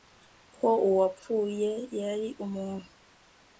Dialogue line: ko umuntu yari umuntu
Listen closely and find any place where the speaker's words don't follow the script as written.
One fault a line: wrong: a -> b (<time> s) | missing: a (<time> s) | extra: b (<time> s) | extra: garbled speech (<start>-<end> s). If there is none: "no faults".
wrong: umuntu -> uwapfuye (0.9 s)